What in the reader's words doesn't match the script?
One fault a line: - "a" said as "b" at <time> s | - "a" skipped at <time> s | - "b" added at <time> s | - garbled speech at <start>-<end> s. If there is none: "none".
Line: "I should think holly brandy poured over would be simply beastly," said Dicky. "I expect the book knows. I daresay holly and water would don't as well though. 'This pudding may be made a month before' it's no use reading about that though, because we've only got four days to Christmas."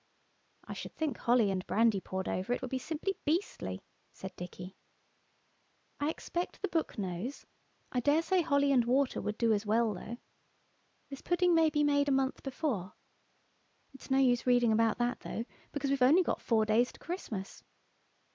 - "and" added at 1.5 s
- "it" added at 2.5 s
- "don't" said as "do" at 9.4 s